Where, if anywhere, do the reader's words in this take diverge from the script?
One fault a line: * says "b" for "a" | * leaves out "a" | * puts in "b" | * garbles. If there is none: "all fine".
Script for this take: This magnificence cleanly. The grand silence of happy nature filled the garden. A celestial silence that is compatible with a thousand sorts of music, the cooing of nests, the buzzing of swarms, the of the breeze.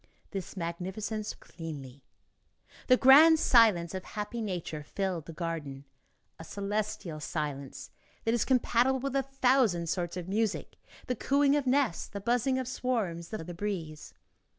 all fine